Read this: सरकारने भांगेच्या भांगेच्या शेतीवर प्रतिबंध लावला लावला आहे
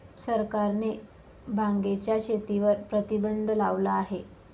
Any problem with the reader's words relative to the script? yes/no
yes